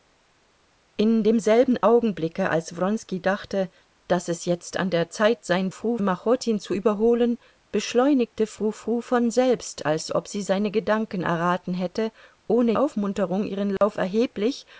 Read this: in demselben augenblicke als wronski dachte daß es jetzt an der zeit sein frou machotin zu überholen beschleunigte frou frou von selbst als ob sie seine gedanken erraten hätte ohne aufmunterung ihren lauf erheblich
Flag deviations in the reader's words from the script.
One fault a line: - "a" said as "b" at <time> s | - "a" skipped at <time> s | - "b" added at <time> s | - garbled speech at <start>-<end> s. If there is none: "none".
none